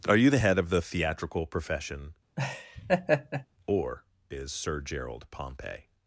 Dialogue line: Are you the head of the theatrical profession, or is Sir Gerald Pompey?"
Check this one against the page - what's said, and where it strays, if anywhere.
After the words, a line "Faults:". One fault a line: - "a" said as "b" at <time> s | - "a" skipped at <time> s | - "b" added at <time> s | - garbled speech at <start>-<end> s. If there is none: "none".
Are you the head of the theatrical profession, or is Sir Gerald Pompey?"
Faults:
none